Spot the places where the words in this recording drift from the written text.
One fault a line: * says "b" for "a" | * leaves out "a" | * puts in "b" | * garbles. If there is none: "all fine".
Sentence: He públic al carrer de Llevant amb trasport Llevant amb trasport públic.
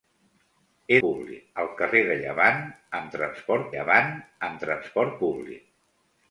all fine